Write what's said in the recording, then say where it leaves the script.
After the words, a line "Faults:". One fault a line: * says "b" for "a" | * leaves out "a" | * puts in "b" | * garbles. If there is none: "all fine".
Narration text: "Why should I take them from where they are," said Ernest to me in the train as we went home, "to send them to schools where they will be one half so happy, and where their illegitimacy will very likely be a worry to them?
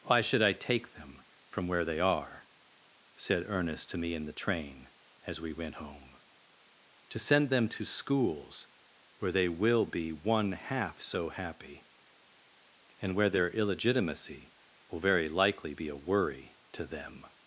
"Why should I take them from where they are," said Ernest to me in the train as we went home, "to send them to schools where they will be one half so happy, and where their illegitimacy will very likely be a worry to them?
Faults:
all fine